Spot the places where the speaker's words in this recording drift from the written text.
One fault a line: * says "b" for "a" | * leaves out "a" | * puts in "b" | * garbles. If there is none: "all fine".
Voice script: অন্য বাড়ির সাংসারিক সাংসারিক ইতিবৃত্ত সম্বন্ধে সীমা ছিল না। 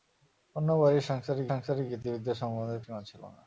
all fine